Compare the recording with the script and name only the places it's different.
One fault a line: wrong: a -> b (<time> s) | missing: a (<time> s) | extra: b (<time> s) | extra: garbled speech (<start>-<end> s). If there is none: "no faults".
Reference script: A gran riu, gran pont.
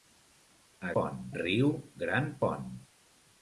wrong: gran -> pont (1.0 s)